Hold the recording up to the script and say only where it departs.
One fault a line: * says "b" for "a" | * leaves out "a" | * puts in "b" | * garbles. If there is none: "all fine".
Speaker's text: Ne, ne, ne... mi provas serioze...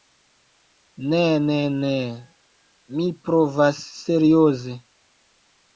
all fine